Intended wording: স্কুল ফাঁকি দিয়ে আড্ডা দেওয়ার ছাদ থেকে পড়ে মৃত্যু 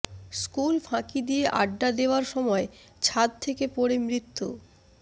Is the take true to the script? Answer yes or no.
no